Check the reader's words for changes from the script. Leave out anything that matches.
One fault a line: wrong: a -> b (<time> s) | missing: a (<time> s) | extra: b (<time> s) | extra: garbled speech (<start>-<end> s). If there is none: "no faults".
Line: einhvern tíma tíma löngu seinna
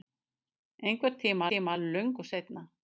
no faults